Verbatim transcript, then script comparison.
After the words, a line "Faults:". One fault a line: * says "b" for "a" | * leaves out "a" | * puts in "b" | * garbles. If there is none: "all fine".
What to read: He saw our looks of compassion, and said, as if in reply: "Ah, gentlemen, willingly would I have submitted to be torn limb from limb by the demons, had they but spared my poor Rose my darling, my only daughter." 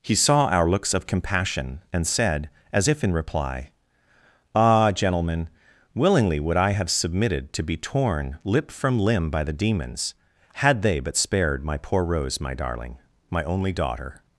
He saw our looks of compassion, and said, as if in reply: "Ah, gentlemen, willingly would I have submitted to be torn lip from limb by the demons, had they but spared my poor Rose my darling, my only daughter."
Faults:
* says "lip" for "limb"